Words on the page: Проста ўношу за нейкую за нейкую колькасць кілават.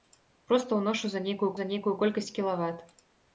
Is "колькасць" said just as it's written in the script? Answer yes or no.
yes